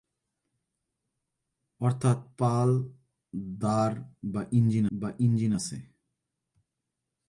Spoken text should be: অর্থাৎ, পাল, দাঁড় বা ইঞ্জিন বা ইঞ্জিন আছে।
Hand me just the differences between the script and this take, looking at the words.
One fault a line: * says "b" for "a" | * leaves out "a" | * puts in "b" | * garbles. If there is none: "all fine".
all fine